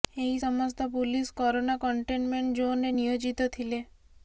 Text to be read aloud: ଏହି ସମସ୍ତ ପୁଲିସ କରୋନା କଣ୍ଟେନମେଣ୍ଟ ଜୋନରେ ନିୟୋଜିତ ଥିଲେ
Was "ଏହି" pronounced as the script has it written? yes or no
yes